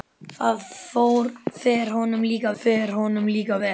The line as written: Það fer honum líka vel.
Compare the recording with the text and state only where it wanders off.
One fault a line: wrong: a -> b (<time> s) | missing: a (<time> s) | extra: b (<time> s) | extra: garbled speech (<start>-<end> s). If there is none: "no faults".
extra: fer honum líka (2.6 s)